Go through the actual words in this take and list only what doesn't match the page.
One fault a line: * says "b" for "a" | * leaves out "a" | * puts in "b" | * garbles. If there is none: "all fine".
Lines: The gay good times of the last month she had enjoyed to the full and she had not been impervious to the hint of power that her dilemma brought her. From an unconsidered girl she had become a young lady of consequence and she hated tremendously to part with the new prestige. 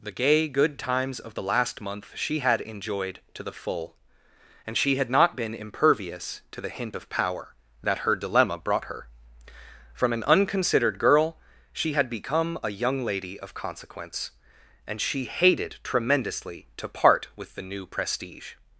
all fine